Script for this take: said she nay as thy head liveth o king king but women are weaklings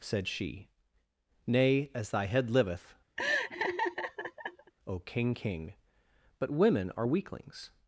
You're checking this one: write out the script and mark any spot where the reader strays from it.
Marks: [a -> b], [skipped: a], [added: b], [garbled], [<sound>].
said she nay as thy head liveth [laugh] o king king but women are weaklings